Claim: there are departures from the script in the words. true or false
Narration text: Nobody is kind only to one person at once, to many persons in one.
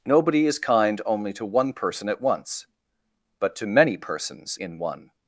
true